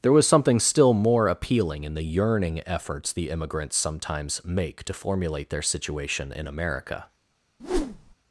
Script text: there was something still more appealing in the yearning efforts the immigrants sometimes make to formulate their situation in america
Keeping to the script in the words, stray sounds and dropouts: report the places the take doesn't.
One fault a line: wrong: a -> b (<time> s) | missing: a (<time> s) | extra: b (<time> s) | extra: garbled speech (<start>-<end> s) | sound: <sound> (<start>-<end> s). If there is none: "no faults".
sound: whoosh (7.6-8.1 s)